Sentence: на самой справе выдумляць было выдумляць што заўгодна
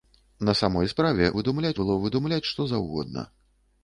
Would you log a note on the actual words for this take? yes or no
no